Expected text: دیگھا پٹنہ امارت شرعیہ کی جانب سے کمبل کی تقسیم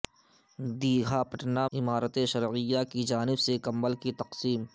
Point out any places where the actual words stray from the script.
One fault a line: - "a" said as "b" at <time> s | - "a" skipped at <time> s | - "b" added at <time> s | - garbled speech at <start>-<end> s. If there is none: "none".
none